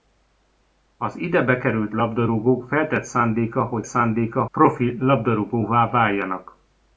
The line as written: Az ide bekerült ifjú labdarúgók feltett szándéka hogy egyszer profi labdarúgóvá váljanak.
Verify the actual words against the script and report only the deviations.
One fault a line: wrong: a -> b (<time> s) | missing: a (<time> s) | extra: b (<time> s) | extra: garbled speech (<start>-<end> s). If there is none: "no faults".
missing: ifjú (1.9 s)
wrong: egyszer -> szándéka (3.8 s)